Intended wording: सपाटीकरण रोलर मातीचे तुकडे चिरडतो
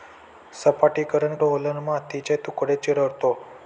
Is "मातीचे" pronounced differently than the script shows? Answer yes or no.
no